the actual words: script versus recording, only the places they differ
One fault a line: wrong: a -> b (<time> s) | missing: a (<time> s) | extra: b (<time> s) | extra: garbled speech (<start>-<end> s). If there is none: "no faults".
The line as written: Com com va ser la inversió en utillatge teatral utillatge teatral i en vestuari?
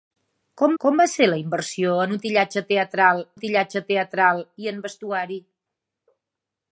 no faults